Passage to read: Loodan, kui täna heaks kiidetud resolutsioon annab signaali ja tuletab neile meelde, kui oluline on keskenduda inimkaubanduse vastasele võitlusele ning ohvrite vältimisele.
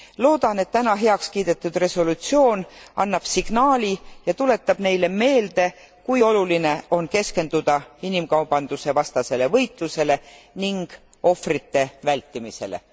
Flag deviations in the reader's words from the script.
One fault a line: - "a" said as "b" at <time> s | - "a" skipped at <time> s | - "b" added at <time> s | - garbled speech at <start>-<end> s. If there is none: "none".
- "kui" said as "et" at 0.6 s